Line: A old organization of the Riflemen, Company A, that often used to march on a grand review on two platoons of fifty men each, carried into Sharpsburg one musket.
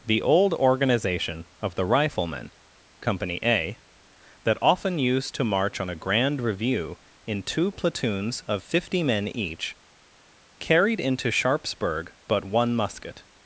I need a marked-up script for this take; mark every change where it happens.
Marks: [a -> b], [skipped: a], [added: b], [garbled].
[A -> The] old organization of the Riflemen, Company A, that often used to march on a grand review [on -> in] two platoons of fifty men each, carried into Sharpsburg [added: but] one musket.